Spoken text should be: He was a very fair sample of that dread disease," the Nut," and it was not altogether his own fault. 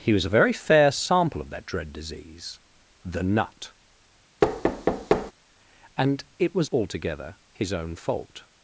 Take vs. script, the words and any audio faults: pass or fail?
fail